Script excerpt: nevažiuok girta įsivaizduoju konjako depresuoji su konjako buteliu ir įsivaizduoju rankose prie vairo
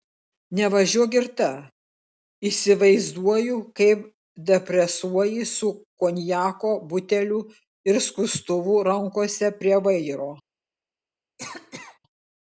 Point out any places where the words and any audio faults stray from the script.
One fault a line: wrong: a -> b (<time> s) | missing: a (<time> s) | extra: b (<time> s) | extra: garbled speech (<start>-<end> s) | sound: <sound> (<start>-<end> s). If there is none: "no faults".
wrong: konjako -> kaip (3.8 s)
wrong: įsivaizduoju -> skustuvu (8.1 s)
sound: cough (11.4-12.0 s)